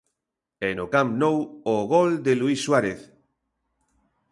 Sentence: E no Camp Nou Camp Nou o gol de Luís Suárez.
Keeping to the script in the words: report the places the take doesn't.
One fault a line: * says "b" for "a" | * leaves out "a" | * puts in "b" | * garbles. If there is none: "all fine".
* leaves out "Camp Nou"